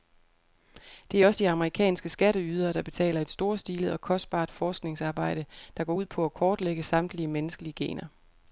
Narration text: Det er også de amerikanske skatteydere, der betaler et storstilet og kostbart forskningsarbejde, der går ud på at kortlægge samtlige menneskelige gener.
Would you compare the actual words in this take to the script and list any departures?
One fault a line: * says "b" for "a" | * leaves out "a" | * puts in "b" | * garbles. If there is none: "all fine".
all fine